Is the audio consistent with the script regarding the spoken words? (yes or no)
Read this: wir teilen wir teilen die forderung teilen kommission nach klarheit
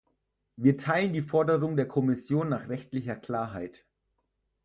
no